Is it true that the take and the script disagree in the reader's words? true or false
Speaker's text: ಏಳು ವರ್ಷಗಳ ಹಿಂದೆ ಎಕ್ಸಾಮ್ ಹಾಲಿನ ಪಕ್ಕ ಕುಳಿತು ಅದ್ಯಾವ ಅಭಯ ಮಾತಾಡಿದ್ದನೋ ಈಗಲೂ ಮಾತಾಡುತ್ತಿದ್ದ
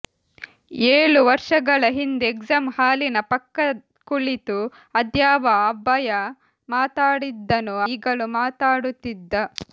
false